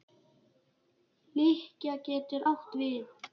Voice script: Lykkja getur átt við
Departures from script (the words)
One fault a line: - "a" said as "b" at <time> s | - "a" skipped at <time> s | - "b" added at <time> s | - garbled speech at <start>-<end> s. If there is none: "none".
none